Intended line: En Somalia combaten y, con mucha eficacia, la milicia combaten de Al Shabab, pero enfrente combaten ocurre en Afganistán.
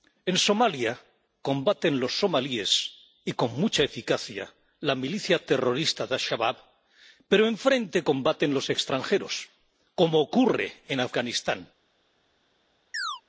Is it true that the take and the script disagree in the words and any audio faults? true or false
true